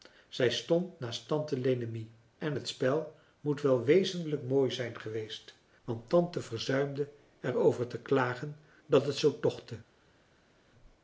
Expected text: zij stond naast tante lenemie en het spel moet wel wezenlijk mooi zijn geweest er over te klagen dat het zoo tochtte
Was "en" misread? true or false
false